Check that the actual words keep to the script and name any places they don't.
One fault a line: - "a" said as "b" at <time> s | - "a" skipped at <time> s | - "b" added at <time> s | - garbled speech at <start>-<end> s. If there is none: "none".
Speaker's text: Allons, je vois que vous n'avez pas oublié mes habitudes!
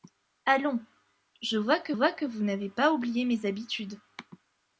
- "vois que" added at 1.9 s